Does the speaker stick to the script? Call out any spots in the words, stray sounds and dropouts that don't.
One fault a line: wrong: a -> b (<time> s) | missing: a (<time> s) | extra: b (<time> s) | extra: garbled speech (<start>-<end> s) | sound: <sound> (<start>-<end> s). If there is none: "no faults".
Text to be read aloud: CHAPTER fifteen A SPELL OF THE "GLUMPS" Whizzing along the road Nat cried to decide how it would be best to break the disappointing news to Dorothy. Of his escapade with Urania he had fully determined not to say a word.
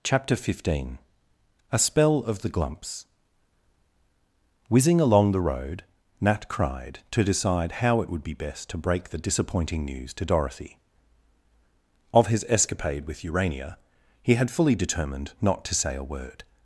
no faults